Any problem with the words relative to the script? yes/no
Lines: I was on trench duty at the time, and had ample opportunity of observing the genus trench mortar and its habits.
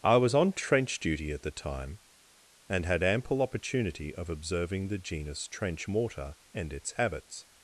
no